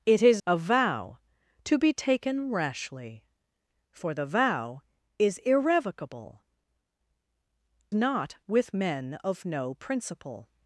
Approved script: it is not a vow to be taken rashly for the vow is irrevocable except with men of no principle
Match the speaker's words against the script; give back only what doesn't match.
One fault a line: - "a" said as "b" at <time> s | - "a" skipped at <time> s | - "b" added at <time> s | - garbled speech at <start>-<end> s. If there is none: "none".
- "not" skipped at 0.4 s
- "except" said as "not" at 7.9 s